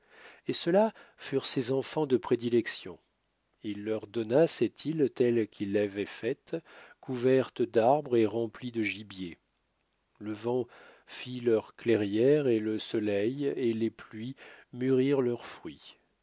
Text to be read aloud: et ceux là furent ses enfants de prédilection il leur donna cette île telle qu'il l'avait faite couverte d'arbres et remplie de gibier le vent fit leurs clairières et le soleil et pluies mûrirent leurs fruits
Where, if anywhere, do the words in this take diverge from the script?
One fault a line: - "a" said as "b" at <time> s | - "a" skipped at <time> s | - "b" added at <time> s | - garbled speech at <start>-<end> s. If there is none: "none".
- "les" added at 13.7 s